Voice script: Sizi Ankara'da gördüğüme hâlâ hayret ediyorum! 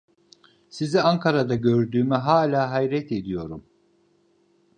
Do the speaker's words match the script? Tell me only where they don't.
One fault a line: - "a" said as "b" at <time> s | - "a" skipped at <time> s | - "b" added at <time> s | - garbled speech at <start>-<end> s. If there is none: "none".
none